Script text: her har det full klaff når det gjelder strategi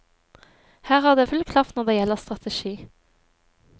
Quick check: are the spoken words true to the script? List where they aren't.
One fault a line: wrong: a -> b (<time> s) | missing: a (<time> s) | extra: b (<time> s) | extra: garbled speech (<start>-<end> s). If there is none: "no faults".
no faults